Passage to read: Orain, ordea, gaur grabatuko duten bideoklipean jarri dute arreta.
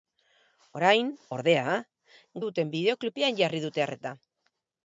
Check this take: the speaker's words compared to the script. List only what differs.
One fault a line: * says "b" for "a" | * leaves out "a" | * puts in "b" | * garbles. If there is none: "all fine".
* leaves out "gaur grabatuko"